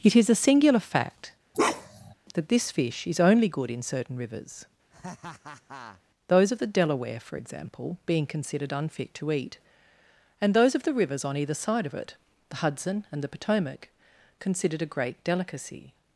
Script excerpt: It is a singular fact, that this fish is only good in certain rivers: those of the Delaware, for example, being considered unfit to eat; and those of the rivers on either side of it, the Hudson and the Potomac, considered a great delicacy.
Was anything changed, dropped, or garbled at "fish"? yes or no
no